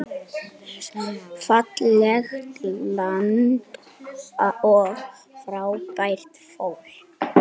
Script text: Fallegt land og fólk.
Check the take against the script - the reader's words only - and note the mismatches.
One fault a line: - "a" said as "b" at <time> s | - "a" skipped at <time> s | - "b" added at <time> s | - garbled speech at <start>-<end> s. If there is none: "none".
- "frábært" added at 5.4 s